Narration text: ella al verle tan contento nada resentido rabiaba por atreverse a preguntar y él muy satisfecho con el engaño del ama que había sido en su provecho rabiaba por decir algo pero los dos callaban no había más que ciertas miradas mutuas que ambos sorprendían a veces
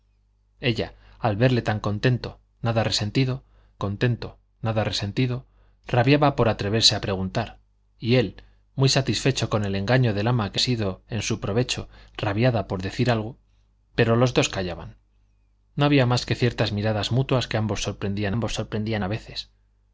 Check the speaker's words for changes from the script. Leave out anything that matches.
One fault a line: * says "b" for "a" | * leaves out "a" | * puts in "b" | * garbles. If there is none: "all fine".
* puts in "contento nada resentido"
* leaves out "había"
* puts in "ambos sorprendían"